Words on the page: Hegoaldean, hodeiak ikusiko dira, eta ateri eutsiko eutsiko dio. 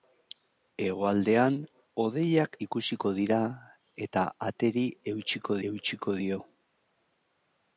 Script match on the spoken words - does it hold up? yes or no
yes